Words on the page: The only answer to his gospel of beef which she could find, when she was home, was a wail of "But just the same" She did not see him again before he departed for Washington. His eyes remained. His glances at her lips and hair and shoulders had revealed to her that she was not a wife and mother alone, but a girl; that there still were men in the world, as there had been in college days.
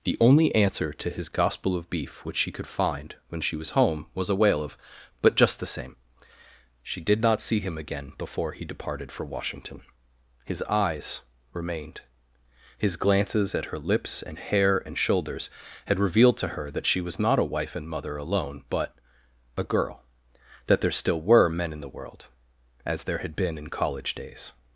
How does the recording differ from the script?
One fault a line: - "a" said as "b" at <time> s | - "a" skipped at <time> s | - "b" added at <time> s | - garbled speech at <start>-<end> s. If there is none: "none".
none